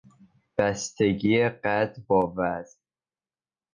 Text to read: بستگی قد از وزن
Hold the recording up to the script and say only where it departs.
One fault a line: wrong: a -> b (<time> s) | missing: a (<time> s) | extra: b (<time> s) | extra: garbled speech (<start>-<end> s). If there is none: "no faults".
wrong: از -> با (2.1 s)